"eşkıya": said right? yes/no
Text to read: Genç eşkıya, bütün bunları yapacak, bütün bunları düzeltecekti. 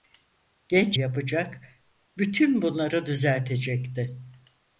no